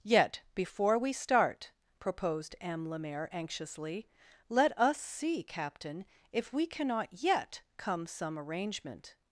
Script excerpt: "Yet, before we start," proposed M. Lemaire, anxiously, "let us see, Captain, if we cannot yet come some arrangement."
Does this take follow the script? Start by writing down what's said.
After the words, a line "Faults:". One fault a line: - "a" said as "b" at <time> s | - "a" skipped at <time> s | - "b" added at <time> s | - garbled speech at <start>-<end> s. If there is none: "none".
"Yet, before we start," proposed M. Lemaire, anxiously, "let us see, Captain, if we cannot yet come some arrangement."
Faults:
none